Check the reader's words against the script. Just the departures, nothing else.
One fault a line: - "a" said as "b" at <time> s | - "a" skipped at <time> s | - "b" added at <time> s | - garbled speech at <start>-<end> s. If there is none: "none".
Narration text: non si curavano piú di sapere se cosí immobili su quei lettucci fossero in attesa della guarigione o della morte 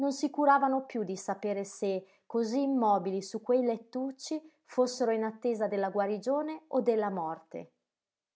none